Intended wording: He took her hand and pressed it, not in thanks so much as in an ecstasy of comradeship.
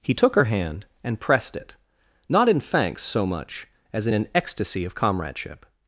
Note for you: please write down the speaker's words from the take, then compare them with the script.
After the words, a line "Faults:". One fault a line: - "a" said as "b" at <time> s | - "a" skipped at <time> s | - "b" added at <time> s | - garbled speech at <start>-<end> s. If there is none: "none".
He took her hand and pressed it, not in thanks so much as in an ecstasy of comradeship.
Faults:
none